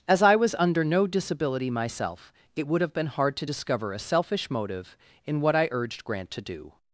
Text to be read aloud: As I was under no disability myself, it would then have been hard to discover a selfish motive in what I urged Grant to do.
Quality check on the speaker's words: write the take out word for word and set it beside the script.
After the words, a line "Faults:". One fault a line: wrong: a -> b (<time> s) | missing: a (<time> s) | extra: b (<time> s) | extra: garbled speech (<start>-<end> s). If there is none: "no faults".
As I was under no disability myself, it would have been hard to discover a selfish motive in what I urged Grant to do.
Faults:
missing: then (2.8 s)